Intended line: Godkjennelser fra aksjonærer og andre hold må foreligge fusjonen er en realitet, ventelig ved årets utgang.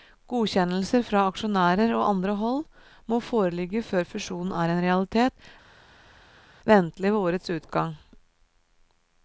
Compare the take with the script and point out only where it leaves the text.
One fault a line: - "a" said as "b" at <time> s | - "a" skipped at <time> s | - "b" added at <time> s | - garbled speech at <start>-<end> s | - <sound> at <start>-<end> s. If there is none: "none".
- "før" added at 3.9 s